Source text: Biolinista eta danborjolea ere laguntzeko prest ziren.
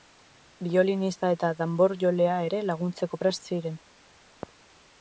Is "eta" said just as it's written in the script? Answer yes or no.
yes